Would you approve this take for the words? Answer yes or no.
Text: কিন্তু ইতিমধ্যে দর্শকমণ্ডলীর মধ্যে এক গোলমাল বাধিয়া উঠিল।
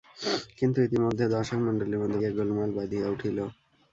yes